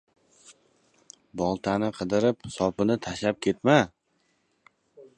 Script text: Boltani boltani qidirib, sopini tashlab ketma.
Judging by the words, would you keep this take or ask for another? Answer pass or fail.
fail